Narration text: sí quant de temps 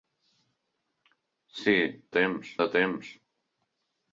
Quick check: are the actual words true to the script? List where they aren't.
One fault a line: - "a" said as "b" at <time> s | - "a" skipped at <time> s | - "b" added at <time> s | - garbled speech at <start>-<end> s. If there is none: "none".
- "quant" said as "temps" at 2.2 s